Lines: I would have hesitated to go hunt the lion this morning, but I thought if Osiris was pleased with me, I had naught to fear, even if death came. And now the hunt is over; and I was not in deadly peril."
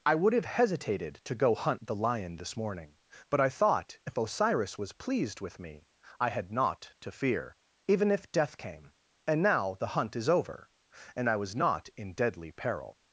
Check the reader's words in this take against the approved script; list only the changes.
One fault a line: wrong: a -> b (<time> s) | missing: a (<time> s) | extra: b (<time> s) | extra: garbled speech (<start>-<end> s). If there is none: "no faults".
no faults